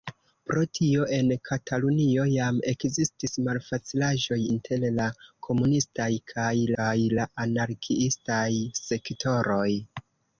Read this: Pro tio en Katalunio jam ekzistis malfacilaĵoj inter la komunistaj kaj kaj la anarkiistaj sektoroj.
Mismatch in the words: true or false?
false